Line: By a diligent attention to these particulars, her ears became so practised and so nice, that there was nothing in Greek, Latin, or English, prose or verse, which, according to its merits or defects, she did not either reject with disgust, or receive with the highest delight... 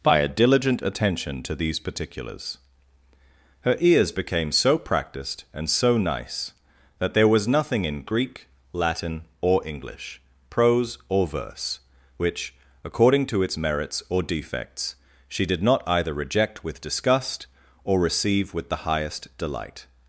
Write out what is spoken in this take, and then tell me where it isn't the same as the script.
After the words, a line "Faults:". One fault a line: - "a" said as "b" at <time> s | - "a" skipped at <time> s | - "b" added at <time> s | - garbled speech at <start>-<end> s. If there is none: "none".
By a diligent attention to these particulars, her ears became so practised and so nice, that there was nothing in Greek, Latin, or English, prose or verse, which, according to its merits or defects, she did not either reject with disgust, or receive with the highest delight...
Faults:
none